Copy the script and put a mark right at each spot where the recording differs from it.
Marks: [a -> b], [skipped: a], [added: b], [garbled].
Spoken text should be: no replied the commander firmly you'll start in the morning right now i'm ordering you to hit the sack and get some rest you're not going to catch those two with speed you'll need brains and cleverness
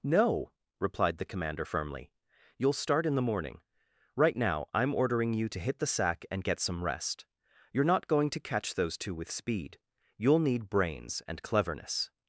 no replied the commander firmly you'll start in the morning right now i'm ordering you to hit the sack and get some rest you're not going to catch those two with speed you'll need brains and cleverness